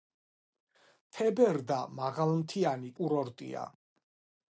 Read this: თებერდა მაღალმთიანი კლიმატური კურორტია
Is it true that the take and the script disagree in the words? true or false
true